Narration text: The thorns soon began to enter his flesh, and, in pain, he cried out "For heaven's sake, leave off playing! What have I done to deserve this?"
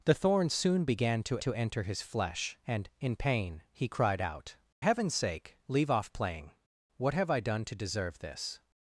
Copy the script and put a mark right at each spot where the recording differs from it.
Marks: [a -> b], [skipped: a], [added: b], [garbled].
The thorns soon began to [added: to] enter his flesh, and, in pain, he cried out [skipped: "For] heaven's sake, leave off playing! What have I done to deserve this?"